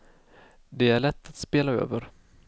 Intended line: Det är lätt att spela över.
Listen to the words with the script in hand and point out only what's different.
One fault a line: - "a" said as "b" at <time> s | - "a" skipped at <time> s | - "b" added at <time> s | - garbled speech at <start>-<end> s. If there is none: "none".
none